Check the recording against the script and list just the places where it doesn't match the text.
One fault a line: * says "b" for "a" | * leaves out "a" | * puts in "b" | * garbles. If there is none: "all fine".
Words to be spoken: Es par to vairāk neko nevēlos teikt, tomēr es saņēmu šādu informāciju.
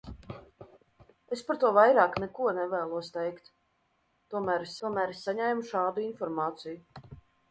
* puts in "tomēr es"